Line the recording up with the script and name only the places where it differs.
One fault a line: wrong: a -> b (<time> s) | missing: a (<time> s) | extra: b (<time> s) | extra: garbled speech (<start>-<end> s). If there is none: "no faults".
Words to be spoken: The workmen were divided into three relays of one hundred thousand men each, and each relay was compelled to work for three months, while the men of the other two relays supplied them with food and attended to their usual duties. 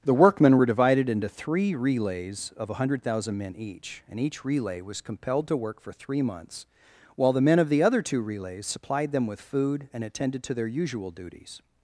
no faults